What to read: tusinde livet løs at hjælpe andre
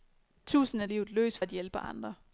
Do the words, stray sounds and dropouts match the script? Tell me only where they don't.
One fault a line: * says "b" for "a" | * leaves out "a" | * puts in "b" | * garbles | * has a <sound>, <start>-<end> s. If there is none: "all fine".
all fine